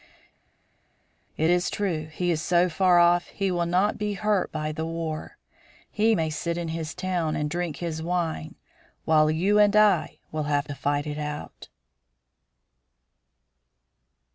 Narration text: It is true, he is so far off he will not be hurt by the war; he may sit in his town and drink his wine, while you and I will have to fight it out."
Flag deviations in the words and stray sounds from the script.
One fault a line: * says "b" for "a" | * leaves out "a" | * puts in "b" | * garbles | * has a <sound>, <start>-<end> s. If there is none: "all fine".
all fine